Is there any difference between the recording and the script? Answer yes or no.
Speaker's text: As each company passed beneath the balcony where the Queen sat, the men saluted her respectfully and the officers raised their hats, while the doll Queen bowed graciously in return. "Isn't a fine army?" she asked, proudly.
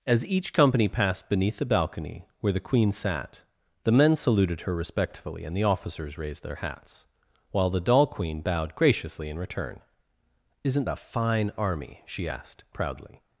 no